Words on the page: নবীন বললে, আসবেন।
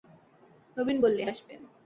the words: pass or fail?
pass